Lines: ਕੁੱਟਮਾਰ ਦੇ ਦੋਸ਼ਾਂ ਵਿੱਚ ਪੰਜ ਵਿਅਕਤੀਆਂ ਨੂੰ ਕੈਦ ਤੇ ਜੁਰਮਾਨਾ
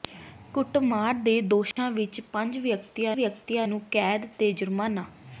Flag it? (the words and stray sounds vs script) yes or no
yes